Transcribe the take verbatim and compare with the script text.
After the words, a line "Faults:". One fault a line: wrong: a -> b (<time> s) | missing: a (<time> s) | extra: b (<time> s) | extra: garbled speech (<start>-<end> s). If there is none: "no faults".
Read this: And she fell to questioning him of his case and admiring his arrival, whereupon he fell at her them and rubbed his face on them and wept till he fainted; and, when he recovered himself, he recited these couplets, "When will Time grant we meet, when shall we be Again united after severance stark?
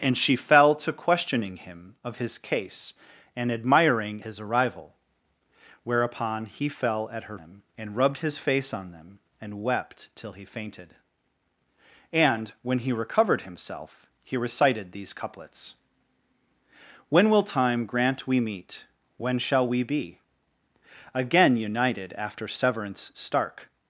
And she fell to questioning him of his case and admiring his arrival, whereupon he fell at her them and rubbed his face on them and wept till he fainted; and, when he recovered himself, he recited these couplets, "When will Time grant we meet, when shall we be Again united after severance stark?
Faults:
no faults